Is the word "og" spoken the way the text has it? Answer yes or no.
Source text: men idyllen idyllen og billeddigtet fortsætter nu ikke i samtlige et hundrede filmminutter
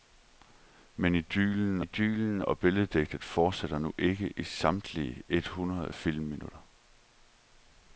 yes